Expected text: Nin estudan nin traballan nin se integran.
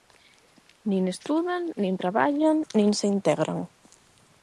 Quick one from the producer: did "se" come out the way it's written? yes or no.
yes